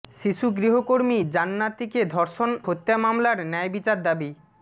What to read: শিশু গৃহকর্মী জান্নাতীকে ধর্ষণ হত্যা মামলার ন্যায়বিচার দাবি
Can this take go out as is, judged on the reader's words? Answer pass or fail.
pass